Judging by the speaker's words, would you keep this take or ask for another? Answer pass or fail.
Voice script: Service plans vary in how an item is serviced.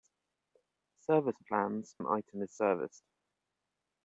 fail